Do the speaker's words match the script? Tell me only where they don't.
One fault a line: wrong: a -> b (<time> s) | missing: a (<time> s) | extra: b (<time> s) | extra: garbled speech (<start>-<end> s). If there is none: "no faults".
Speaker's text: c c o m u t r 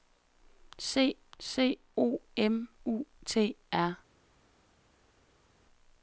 no faults